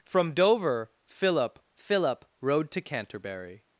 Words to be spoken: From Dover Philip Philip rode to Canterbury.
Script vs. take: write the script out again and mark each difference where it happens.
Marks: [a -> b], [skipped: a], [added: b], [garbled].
From Dover Philip Philip rode to Canterbury.